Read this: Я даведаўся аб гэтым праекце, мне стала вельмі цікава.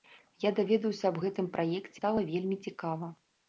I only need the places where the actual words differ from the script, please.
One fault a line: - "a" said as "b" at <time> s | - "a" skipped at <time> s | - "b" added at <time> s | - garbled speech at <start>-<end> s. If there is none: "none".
- "мне" skipped at 2.0 s